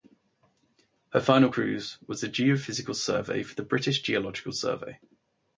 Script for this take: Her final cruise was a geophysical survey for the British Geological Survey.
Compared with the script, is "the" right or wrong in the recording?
right